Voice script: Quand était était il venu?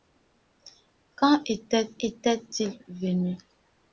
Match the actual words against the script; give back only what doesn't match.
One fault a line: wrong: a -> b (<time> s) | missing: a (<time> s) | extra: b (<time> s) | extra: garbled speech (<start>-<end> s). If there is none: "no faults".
no faults